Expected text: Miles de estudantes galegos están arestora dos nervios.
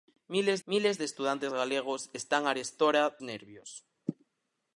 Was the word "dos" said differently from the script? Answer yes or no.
yes